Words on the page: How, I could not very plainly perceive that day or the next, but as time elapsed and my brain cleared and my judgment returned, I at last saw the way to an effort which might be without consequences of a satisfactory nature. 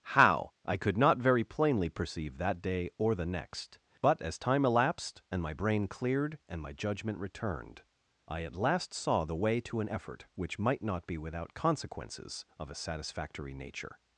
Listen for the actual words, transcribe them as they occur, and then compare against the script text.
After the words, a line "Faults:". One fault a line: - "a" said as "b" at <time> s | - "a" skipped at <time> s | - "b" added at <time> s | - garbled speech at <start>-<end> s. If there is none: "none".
How, I could not very plainly perceive that day or the next, but as time elapsed and my brain cleared and my judgment returned, I at last saw the way to an effort which might not be without consequences of a satisfactory nature.
Faults:
- "not" added at 10.8 s